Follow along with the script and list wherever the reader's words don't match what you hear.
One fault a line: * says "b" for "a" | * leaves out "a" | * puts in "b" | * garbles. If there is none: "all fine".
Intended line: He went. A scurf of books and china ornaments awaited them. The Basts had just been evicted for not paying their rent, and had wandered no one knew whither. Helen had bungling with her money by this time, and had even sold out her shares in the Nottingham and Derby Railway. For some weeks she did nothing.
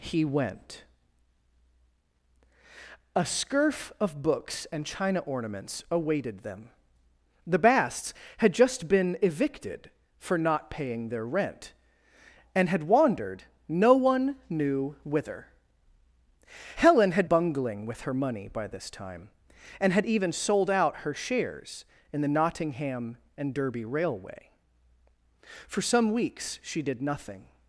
all fine